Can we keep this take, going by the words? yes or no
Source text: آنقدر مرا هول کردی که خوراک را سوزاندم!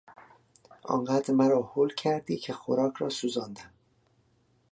yes